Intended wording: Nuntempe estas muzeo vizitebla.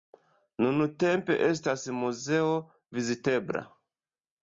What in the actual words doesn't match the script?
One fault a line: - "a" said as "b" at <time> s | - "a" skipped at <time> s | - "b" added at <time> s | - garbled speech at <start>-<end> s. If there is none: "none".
none